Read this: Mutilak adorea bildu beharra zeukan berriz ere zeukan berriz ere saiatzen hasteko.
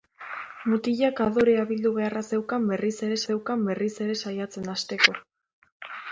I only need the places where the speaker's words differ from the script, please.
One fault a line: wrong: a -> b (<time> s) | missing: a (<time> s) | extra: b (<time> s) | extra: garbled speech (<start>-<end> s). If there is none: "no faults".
no faults